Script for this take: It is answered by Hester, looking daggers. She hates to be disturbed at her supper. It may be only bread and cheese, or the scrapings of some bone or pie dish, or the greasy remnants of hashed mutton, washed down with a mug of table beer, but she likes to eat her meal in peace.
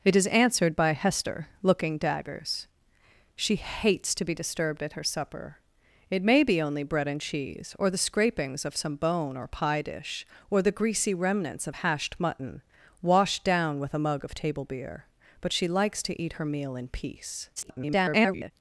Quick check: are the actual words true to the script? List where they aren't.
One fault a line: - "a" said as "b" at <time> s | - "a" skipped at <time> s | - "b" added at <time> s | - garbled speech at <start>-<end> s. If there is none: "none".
- garbled speech at 17.6-18.5 s